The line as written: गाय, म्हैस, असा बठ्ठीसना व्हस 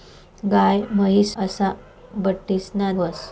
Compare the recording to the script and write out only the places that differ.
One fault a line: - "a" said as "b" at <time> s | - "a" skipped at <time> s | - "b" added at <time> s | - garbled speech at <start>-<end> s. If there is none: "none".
none